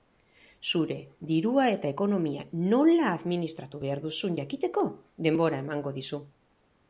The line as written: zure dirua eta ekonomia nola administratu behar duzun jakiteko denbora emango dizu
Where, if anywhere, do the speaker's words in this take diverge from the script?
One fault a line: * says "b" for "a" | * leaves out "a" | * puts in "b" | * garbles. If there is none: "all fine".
all fine